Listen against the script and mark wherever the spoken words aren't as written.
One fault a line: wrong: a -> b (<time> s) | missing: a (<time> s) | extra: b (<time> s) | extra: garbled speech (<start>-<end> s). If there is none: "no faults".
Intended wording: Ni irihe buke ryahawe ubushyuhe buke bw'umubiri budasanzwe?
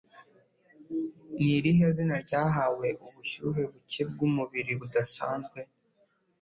wrong: buke -> zina (1.9 s)